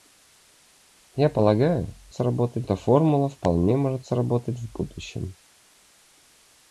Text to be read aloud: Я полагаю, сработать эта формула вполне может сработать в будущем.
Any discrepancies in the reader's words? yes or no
no